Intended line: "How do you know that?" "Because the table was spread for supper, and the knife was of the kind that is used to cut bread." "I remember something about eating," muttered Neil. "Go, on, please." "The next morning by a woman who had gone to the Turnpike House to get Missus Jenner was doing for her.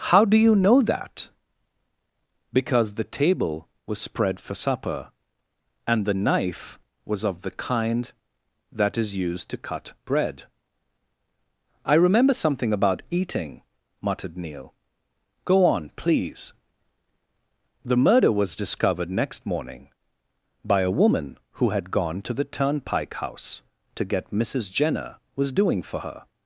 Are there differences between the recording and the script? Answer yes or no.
yes